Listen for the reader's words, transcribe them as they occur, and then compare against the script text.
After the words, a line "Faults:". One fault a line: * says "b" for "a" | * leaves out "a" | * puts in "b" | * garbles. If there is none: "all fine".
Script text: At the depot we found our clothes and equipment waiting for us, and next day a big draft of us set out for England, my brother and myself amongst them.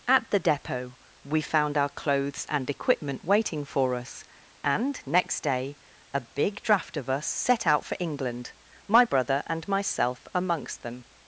At the depot we found our clothes and equipment waiting for us, and next day a big draft of us set out for England, my brother and myself amongst them.
Faults:
all fine